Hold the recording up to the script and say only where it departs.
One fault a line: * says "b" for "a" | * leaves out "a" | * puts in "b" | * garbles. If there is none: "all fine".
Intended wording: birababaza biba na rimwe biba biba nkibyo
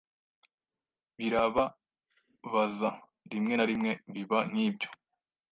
* says "rimwe" for "biba"
* leaves out "biba"